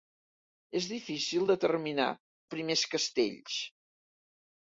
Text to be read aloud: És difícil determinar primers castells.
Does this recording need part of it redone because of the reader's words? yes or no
no